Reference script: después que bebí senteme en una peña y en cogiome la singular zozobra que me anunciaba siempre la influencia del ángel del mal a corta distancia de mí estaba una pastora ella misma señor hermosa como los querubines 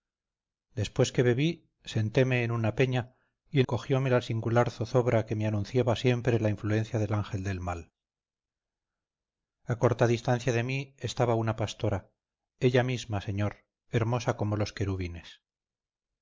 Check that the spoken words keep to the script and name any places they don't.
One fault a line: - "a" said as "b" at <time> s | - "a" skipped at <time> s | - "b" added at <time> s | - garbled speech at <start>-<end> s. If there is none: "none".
none